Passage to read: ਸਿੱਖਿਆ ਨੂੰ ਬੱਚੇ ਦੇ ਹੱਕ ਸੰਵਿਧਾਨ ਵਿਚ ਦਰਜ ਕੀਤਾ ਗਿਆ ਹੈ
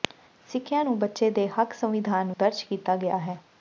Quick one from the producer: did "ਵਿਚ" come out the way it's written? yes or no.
no